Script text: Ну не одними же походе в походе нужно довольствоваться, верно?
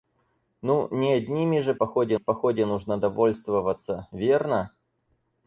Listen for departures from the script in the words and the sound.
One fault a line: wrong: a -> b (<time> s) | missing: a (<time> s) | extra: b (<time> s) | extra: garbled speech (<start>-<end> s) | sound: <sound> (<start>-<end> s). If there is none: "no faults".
no faults